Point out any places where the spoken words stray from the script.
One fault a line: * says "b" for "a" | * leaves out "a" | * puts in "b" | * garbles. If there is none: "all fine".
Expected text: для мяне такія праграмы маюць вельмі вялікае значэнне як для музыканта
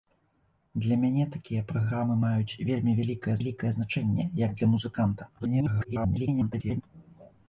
* puts in "вялікае"
* garbles